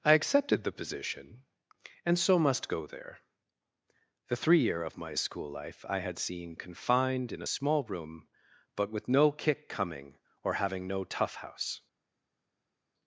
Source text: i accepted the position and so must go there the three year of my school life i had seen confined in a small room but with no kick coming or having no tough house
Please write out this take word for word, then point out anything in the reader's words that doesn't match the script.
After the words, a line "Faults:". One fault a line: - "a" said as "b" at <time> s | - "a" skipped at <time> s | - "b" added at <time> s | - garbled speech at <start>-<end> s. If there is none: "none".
i accepted the position and so must go there the three year of my school life i had seen confined in a small room but with no kick coming or having no tough house
Faults:
none